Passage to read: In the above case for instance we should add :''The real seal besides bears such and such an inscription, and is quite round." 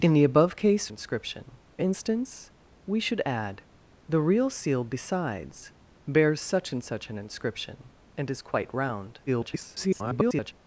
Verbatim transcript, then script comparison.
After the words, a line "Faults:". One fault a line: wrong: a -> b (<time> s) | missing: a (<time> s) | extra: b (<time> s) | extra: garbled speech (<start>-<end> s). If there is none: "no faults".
In the above case inscription instance we should add :''The real seal besides bears such and such an inscription, and is quite round." [garbled]
Faults:
wrong: for -> inscription (0.9 s)
extra: garbled speech (9.3-10.5 s)